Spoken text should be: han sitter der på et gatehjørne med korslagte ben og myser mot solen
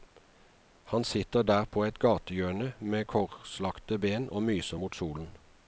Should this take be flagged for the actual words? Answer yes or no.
no